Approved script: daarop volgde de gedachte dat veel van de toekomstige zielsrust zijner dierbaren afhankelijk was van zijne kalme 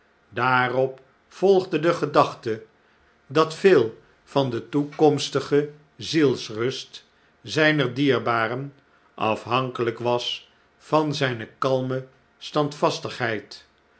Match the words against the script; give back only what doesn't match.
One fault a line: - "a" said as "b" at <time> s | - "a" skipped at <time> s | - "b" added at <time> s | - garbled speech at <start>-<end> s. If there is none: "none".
none